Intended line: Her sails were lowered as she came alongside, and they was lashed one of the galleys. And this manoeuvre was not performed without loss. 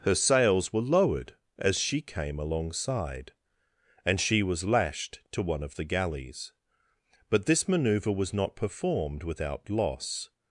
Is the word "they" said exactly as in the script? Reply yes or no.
no